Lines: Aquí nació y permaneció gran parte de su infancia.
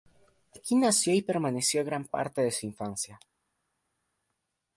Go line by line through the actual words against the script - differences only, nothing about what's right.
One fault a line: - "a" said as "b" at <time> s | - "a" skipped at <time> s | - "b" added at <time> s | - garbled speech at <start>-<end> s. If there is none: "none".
none